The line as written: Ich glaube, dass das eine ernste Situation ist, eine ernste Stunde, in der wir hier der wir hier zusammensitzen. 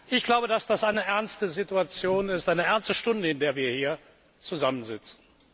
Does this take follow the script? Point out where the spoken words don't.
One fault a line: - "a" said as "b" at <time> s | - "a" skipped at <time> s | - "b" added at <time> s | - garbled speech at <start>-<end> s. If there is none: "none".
- "der wir hier" skipped at 4.0 s